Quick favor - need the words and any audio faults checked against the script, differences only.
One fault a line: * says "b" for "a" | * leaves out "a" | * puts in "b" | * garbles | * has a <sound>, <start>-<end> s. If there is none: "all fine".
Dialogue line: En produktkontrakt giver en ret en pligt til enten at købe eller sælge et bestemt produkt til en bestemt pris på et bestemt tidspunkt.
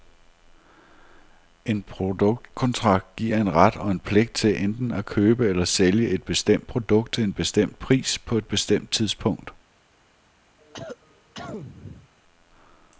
* puts in "og"
* has a cough, 10.6-12.1 s